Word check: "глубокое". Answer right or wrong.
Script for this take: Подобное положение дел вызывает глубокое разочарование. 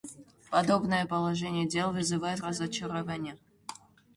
wrong